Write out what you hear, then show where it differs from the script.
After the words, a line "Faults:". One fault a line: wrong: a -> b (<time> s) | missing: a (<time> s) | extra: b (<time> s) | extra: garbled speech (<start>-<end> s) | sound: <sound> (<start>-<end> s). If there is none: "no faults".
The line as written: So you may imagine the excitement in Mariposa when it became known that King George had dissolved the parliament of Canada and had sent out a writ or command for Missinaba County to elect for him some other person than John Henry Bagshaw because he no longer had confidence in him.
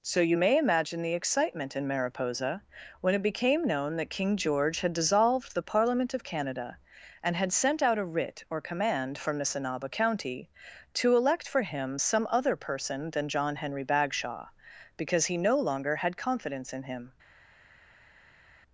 So you may imagine the excitement in Mariposa when it became known that King George had dissolved the parliament of Canada and had sent out a writ or command from Missinaba County to elect for him some other person than John Henry Bagshaw because he no longer had confidence in him.
Faults:
wrong: for -> from (9.2 s)